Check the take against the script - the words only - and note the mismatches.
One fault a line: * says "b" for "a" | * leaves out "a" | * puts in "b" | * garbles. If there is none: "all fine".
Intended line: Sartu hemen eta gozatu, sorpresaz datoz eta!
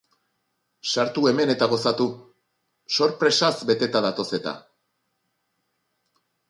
* puts in "beteta"